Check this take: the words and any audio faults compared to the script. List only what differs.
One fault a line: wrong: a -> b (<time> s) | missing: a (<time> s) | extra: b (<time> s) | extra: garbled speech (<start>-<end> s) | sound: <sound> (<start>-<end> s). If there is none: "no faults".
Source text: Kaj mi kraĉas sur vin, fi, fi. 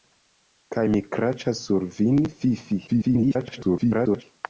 extra: garbled speech (2.9-4.2 s)